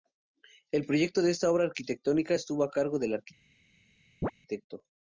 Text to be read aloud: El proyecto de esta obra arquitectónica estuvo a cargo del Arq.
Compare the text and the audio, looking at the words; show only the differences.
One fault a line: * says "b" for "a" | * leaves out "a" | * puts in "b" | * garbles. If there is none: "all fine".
all fine